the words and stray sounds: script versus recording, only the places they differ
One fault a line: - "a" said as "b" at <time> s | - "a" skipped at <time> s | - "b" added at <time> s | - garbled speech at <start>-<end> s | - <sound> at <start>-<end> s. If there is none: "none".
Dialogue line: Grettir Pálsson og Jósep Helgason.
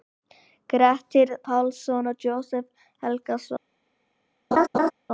- laugh at 4.5-4.9 s